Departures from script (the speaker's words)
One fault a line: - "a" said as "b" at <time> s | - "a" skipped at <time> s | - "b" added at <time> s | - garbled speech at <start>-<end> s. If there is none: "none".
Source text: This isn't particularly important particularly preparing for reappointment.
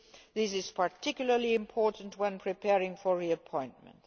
- "isn't" said as "is" at 0.5 s
- "particularly" said as "when" at 2.2 s